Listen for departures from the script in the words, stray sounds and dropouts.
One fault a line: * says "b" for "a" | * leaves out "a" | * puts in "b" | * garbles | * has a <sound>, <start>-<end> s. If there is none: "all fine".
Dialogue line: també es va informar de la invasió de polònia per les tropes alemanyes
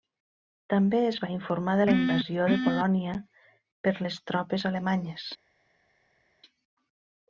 all fine